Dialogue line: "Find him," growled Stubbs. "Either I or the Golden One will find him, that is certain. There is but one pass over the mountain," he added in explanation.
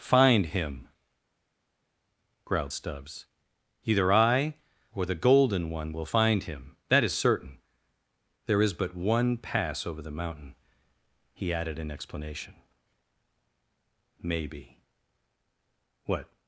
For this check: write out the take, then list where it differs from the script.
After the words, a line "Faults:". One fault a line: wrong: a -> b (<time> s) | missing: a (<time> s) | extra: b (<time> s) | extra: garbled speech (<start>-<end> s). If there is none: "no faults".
"Find him," growled Stubbs. "Either I or the Golden One will find him, that is certain. There is but one pass over the mountain," he added in explanation. "Maybe. What
Faults:
extra: Maybe What (14.2 s)